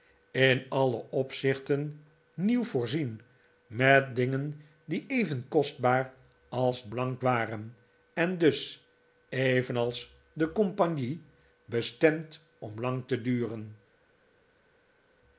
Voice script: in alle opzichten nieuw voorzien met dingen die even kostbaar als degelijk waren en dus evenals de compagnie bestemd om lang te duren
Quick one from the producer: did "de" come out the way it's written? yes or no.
yes